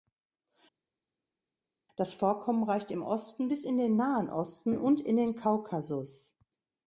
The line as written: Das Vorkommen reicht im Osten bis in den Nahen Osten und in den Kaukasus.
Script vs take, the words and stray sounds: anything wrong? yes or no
no